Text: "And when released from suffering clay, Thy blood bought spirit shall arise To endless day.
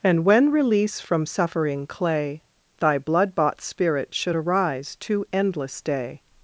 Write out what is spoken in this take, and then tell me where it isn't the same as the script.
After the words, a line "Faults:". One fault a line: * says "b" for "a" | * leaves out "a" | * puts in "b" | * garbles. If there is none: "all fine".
"And when release from suffering clay, Thy blood bought spirit should arise To endless day.
Faults:
* says "release" for "released"
* says "should" for "shall"